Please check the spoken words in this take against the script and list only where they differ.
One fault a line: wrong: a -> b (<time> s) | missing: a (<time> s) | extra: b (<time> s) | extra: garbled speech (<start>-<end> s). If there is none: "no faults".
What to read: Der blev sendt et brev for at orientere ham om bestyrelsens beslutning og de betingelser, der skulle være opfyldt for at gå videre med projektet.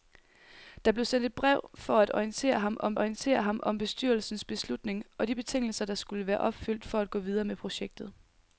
extra: orientere ham om (3.0 s)